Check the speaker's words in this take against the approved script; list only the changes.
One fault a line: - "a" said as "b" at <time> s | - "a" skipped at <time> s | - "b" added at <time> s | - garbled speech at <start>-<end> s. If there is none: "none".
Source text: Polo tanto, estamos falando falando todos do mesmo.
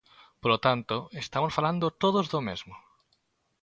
- "falando" skipped at 1.9 s